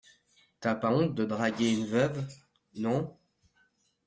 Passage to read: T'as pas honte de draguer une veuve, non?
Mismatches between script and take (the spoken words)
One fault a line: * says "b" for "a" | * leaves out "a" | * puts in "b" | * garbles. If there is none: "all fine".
all fine